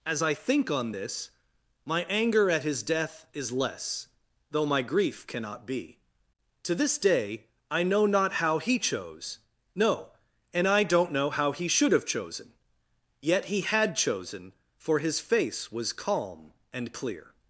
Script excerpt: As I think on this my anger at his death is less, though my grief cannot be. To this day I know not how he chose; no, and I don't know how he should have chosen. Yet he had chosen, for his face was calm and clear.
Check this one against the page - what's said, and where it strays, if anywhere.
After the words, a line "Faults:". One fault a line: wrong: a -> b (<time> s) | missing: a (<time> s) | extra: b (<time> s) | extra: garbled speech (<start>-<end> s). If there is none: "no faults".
As I think on this my anger at his death is less, though my grief cannot be. To this day I know not how he chose; no, and I don't know how he should have chosen. Yet he had chosen, for his face was calm and clear.
Faults:
no faults